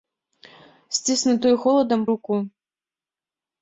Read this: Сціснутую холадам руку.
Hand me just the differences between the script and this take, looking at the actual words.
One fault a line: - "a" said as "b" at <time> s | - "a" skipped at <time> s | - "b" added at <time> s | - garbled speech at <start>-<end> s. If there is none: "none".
none